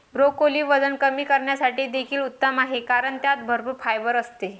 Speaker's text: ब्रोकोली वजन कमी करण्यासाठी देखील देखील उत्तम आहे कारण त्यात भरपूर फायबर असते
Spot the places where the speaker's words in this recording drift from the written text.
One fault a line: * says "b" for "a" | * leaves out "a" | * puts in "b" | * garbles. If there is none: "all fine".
* leaves out "देखील"